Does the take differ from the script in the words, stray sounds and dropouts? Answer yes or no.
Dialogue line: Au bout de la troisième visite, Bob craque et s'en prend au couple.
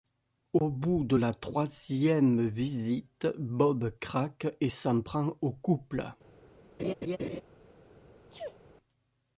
yes